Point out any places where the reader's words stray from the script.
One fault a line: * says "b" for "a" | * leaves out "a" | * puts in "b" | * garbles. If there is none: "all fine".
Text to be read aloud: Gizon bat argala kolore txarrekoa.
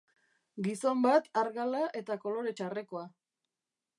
* puts in "eta"